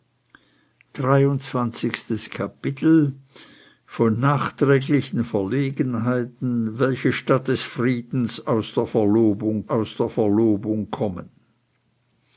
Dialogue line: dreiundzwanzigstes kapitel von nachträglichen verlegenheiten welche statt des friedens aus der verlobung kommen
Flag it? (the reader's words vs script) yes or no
yes